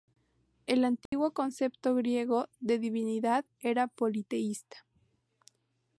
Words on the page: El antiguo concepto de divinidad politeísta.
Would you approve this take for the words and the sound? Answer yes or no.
no